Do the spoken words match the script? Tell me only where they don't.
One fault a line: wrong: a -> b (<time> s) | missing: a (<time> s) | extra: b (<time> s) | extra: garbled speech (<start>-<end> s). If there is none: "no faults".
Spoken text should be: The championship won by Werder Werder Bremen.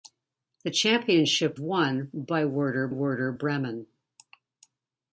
no faults